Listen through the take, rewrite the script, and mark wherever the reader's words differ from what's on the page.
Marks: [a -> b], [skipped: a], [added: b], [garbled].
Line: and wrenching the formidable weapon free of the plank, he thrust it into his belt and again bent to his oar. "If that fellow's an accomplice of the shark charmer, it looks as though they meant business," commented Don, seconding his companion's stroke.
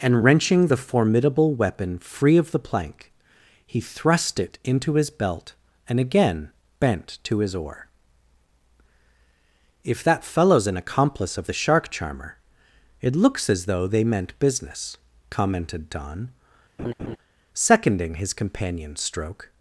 and wrenching the formidable weapon free of the plank, he thrust it into his belt and again bent to his oar. "If that fellow's an accomplice of the shark charmer, it looks as though they meant business," commented Don, seconding his companion's stroke.